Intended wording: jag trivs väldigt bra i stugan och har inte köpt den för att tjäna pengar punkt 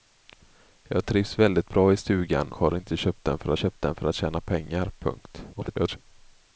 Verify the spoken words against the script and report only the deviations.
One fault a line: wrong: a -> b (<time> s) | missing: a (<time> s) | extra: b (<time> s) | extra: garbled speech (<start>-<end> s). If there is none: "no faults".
missing: och (2.5 s)
extra: köpt den för (3.6 s)
extra: garbled speech (5.5-6.0 s)